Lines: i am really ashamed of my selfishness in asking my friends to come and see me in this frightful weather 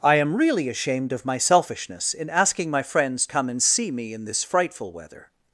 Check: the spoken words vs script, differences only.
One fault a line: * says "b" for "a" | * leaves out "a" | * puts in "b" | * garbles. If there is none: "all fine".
* leaves out "to"